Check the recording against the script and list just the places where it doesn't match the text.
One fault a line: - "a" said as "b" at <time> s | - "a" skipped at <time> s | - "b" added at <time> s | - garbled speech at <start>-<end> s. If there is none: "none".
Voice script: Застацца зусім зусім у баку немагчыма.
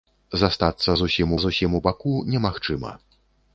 none